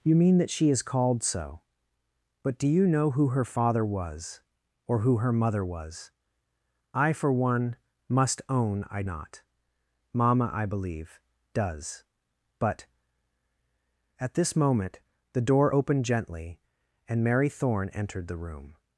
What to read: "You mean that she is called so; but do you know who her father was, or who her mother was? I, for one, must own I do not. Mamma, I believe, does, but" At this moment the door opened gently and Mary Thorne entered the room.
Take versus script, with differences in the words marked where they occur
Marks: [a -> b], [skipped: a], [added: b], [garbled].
"You mean that she is called so; but do you know who her father was, or who her mother was? I, for one, must own I [skipped: do] not. Mamma, I believe, does, but" At this moment the door opened gently and Mary Thorne entered the room.